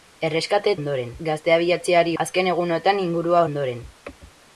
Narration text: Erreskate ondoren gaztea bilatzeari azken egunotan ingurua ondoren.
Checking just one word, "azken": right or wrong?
right